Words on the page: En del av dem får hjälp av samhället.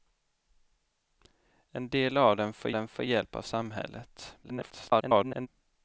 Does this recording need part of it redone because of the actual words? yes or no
yes